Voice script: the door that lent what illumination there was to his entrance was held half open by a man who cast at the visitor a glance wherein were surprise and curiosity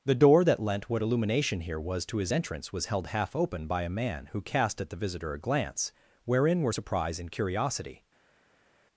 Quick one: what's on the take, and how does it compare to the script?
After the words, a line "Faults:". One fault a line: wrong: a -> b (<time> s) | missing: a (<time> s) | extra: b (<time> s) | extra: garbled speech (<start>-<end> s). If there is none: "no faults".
the door that lent what illumination here was to his entrance was held half open by a man who cast at the visitor a glance wherein were surprise and curiosity
Faults:
wrong: there -> here (1.6 s)